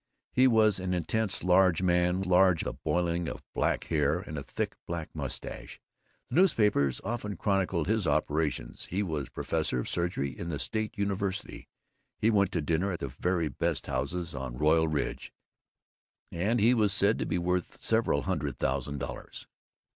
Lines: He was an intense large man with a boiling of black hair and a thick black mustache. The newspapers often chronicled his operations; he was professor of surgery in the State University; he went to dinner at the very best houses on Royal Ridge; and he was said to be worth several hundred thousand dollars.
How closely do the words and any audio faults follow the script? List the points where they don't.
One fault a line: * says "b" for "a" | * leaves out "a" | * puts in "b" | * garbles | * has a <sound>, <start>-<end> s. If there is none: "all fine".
* says "large" for "with"